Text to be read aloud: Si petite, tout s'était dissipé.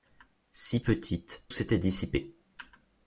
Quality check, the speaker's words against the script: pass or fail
fail